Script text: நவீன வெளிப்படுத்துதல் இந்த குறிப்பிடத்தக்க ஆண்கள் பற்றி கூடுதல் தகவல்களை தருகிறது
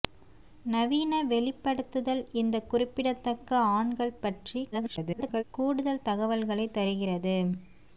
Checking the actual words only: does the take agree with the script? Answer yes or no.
no